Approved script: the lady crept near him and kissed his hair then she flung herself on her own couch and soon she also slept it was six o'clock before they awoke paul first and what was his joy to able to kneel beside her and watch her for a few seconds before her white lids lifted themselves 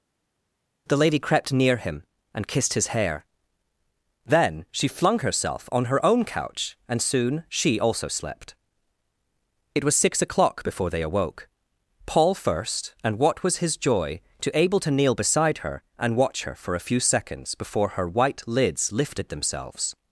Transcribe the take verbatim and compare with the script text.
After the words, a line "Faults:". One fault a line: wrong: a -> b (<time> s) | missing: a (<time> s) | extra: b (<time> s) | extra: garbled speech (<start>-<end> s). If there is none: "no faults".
the lady crept near him and kissed his hair then she flung herself on her own couch and soon she also slept it was six o'clock before they awoke paul first and what was his joy to able to kneel beside her and watch her for a few seconds before her white lids lifted themselves
Faults:
no faults